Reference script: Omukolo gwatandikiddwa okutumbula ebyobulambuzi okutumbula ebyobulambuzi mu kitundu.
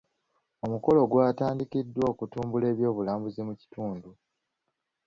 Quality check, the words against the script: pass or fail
fail